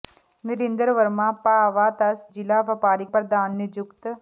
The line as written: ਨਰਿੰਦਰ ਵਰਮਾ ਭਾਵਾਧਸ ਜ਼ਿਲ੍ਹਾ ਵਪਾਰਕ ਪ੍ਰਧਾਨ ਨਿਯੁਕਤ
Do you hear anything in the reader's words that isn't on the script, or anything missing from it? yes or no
no